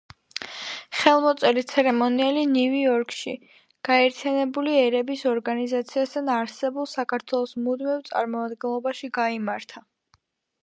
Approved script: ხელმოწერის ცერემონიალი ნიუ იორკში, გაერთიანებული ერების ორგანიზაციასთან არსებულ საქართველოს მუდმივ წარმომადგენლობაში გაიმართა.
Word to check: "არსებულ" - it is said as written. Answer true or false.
true